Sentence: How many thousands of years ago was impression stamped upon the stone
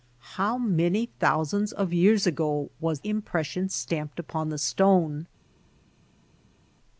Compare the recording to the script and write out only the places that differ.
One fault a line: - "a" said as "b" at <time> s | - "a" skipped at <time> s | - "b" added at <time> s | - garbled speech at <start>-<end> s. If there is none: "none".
none